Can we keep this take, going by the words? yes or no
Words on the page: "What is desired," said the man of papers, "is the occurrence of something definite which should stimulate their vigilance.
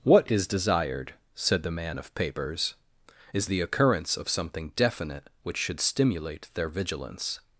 yes